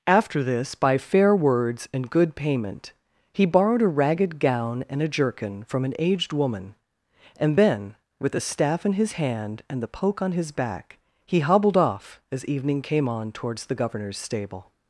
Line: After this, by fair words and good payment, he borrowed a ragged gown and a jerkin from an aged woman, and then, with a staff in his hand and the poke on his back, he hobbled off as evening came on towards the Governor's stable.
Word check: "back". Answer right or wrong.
right